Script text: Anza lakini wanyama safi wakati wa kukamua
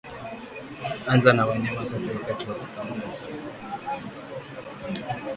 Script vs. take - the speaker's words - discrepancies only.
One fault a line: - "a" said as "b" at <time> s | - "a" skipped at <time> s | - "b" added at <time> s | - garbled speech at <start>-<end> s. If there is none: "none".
- "lakini" said as "na" at 1.3 s